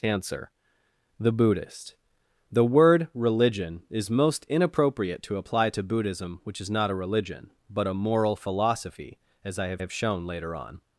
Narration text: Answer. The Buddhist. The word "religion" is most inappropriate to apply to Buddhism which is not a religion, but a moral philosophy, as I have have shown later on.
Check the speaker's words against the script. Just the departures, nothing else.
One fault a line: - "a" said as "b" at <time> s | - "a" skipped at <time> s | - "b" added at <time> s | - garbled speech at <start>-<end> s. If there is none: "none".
none